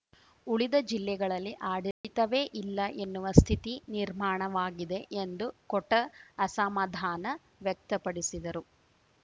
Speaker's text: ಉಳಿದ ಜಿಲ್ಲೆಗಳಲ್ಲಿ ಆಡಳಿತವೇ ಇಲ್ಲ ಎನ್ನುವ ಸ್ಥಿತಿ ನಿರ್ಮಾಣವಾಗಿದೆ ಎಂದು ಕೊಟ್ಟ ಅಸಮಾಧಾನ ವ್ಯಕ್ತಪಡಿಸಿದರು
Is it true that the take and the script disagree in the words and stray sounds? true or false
true